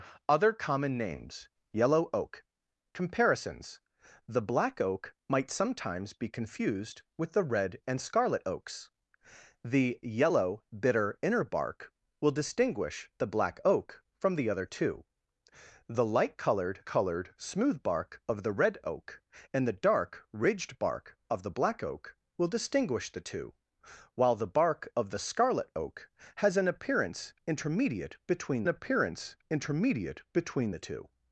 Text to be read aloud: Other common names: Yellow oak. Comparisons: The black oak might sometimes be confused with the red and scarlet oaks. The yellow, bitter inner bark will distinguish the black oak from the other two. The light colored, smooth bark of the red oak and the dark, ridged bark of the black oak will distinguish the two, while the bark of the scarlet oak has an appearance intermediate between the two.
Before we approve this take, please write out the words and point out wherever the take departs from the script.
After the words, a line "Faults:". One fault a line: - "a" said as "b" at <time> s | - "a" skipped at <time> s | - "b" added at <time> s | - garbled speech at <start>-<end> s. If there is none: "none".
Other common names: Yellow oak. Comparisons: The black oak might sometimes be confused with the red and scarlet oaks. The yellow, bitter inner bark will distinguish the black oak from the other two. The light colored colored, smooth bark of the red oak and the dark, ridged bark of the black oak will distinguish the two, while the bark of the scarlet oak has an appearance intermediate between appearance intermediate between the two.
Faults:
- "colored" added at 16.8 s
- "appearance intermediate between" added at 28.7 s